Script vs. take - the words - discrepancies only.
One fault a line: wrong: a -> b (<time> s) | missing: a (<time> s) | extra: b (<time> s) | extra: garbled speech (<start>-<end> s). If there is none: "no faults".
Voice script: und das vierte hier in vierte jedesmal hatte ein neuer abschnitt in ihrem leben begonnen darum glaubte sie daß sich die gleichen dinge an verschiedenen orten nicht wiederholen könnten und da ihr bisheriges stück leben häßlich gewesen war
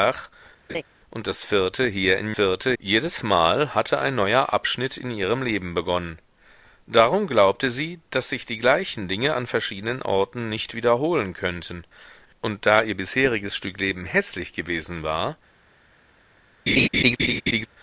no faults